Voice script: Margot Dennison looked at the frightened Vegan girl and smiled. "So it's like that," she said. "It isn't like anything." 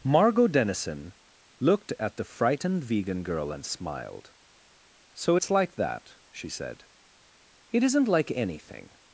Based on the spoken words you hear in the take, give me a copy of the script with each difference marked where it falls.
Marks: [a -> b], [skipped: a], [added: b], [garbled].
Margot Dennison looked at the frightened Vegan girl and smiled. "So it's like that," she said. "It isn't like anything."